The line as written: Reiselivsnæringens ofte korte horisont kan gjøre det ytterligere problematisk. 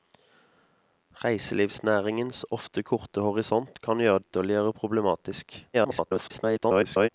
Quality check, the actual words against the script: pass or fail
fail